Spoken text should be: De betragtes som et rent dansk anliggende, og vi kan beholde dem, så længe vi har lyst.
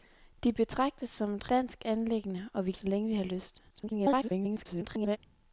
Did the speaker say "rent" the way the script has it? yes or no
no